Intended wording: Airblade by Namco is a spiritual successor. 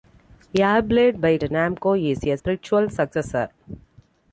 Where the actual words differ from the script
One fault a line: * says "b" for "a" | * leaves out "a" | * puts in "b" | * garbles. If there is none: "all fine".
all fine